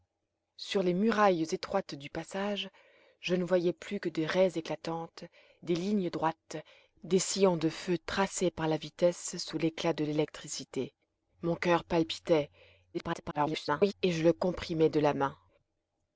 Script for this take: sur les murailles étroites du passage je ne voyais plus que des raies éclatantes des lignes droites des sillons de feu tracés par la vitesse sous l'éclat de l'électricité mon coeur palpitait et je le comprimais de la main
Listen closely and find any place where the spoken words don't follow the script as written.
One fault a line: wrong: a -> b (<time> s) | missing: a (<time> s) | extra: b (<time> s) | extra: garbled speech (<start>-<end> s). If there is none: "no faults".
extra: garbled speech (12.9-13.9 s)